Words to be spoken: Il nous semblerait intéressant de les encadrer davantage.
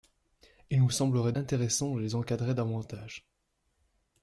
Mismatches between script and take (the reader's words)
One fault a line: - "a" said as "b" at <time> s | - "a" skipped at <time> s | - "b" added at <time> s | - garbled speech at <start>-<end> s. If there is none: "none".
none